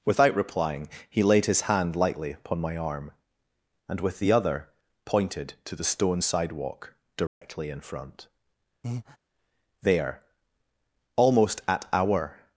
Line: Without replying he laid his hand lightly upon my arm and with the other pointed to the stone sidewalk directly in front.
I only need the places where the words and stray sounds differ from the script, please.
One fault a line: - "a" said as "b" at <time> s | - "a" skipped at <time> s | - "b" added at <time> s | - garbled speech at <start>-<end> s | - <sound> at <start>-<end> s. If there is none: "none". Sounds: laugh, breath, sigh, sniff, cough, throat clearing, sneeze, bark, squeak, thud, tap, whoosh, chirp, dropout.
- dropout at 7.3-7.4 s
- breath at 8.8-9.2 s
- "There almost at our" added at 9.8 s